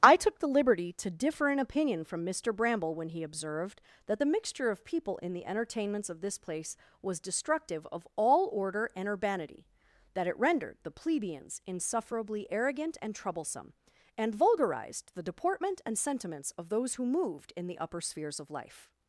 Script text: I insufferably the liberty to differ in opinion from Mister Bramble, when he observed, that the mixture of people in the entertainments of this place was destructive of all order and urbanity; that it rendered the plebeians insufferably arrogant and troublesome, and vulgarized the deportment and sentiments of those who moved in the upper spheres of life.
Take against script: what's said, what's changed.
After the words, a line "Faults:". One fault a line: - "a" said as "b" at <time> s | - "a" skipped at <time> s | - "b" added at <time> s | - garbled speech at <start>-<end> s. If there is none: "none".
I took the liberty to differ in opinion from Mister Bramble, when he observed, that the mixture of people in the entertainments of this place was destructive of all order and urbanity; that it rendered the plebeians insufferably arrogant and troublesome, and vulgarized the deportment and sentiments of those who moved in the upper spheres of life.
Faults:
- "insufferably" said as "took" at 0.1 s